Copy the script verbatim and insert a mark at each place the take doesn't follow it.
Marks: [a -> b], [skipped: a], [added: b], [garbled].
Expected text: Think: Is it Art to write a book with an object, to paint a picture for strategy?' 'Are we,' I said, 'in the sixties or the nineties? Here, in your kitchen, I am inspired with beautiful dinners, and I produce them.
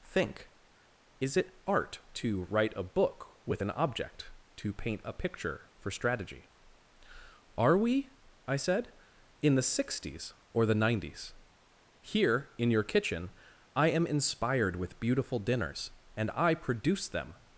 Think: Is it Art to write a book with an object, to paint a picture for strategy?' 'Are we,' I said, 'in the sixties or the nineties? Here, in your kitchen, I am inspired with beautiful dinners, and I produce them.